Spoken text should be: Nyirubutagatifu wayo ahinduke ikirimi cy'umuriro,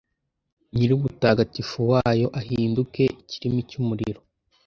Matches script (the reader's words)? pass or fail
pass